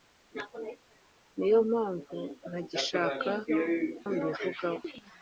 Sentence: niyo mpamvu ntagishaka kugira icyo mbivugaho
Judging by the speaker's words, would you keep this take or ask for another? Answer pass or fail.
fail